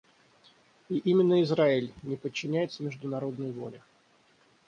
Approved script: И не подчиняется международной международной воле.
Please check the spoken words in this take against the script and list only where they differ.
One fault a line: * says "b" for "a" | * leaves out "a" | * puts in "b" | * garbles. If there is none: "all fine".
* puts in "именно Израиль"
* leaves out "международной"